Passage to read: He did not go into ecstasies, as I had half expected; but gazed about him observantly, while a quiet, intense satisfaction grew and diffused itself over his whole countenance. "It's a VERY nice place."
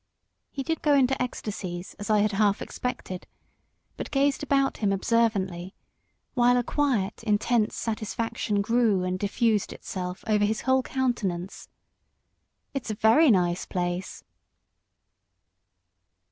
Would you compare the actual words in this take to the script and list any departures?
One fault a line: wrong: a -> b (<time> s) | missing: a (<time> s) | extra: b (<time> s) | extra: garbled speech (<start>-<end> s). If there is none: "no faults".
missing: not (0.8 s)